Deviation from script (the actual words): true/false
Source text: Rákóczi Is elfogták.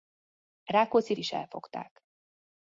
false